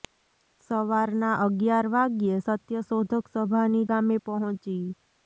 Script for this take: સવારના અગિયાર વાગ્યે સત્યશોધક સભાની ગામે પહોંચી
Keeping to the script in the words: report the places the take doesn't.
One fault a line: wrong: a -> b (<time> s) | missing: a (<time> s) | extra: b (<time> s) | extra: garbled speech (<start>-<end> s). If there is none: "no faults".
no faults